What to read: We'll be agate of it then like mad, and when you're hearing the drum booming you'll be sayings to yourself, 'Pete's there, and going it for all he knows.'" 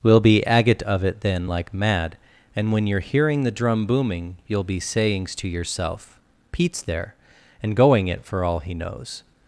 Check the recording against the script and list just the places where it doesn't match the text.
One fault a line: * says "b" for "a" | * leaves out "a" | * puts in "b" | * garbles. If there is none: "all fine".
all fine